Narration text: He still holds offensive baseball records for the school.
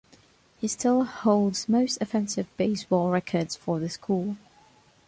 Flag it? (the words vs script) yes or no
yes